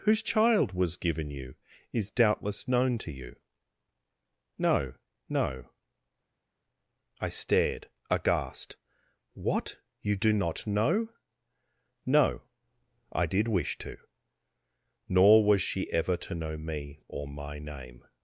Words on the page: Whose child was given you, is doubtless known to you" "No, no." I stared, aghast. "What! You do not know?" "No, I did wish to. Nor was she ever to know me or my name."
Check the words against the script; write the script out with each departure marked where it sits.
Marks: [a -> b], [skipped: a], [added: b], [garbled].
Whose child was given you, is doubtless known to you" "No, no." I stared, aghast. "What! You do not know?" "No, I did wish to. Nor was she ever to know me or my name."